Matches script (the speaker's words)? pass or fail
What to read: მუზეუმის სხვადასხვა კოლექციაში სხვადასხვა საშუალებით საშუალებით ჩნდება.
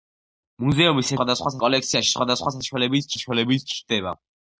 pass